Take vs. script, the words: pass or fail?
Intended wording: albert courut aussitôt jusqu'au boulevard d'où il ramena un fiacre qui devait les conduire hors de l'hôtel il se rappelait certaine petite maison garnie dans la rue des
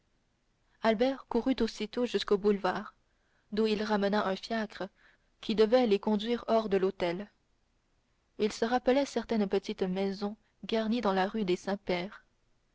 pass